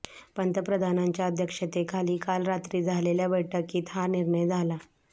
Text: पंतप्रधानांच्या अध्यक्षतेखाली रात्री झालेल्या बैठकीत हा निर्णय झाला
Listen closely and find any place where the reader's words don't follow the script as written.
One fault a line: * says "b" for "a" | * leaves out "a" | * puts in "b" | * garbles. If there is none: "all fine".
* puts in "काल"